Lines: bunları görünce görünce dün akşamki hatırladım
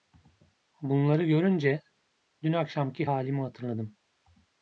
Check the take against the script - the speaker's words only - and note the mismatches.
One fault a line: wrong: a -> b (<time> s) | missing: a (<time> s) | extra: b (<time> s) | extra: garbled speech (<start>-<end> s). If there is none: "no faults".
missing: görünce (1.8 s)
extra: halimi (3.0 s)